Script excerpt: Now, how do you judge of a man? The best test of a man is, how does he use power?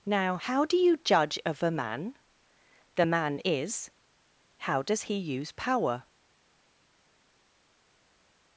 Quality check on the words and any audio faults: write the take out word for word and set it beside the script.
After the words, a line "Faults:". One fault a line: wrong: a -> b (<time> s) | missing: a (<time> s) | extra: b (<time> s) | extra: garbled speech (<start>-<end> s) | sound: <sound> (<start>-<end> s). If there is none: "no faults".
Now, how do you judge of a man? The man is, how does he use power?
Faults:
missing: best test of a (3.0 s)